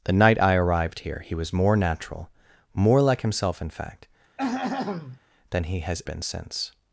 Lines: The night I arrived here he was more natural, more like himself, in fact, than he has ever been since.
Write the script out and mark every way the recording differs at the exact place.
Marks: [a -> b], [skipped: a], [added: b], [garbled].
The night I arrived here he was more natural, more like himself, in fact, than he has [skipped: ever] been since.